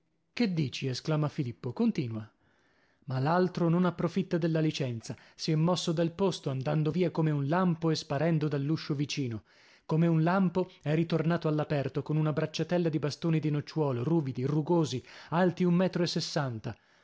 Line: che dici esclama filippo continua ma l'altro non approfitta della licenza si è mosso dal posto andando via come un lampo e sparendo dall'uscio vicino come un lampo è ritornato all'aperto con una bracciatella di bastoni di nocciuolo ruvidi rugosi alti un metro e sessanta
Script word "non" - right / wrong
right